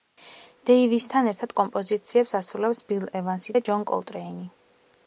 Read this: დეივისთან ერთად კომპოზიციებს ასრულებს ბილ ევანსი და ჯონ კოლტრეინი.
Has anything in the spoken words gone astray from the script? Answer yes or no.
no